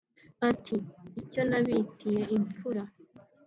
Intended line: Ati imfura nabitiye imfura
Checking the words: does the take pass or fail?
fail